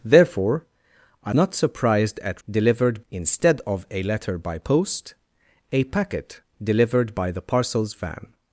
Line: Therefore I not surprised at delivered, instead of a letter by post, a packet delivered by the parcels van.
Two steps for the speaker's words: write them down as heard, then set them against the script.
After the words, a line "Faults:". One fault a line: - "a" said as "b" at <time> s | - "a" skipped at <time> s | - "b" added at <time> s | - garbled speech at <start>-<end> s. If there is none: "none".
Therefore I not surprised at delivered, instead of a letter by post, a packet delivered by the parcels van.
Faults:
none